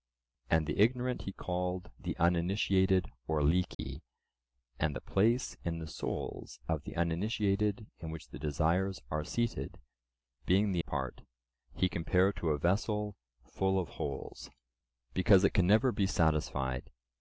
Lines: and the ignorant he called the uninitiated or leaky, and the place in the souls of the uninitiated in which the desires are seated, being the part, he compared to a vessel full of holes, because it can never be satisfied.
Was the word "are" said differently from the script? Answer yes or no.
no